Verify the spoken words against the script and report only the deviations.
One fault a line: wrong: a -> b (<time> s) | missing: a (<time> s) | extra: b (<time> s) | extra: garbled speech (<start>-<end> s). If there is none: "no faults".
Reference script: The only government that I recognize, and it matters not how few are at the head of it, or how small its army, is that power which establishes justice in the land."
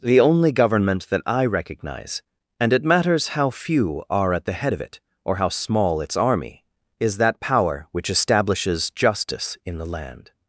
missing: not (3.3 s)